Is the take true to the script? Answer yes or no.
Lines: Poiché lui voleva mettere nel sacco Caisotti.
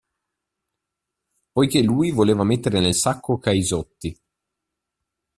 yes